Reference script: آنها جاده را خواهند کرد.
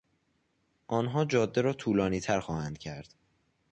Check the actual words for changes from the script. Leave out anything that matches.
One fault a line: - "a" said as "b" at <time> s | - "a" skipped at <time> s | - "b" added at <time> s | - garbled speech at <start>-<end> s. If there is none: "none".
- "طولانیتر" added at 1.7 s